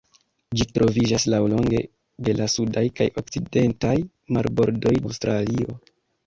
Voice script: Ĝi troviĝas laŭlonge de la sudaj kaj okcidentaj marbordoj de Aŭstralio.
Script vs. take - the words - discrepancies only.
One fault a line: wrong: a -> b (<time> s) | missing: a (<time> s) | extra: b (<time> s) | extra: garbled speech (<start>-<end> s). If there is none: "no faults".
missing: de (5.0 s)